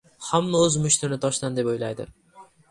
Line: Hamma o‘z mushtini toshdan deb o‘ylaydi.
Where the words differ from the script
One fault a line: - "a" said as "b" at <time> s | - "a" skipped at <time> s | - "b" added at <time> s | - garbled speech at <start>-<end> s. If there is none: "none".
none